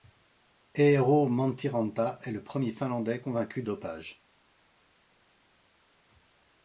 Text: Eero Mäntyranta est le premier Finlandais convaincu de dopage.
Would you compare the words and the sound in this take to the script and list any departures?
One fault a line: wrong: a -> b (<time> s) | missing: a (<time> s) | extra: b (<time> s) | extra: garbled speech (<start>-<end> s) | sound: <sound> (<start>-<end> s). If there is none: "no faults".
missing: de (3.6 s)